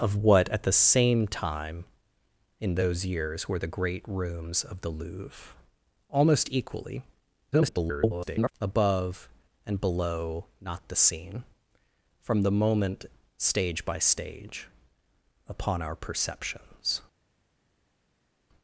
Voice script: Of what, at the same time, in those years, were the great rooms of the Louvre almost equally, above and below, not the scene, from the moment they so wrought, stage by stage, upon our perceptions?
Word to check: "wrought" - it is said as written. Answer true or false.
false